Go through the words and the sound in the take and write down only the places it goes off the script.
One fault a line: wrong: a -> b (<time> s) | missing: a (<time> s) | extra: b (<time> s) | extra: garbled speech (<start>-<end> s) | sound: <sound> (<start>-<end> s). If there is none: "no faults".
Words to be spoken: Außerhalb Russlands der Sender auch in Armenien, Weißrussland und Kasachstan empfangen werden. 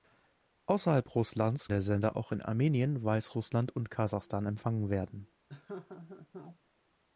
sound: laugh (5.5-6.6 s)